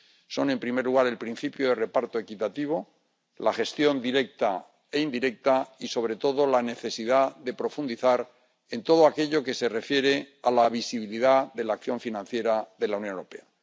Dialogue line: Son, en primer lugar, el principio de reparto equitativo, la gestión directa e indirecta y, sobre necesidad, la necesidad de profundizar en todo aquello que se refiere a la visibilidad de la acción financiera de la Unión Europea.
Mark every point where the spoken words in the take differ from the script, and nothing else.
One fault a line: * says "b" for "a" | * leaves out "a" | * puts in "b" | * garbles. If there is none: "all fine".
* says "todo" for "necesidad"